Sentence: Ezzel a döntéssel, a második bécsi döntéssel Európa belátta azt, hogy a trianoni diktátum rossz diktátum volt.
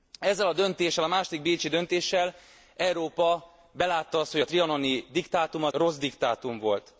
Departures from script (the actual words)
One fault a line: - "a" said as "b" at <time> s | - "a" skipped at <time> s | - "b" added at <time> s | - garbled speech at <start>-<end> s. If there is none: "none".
none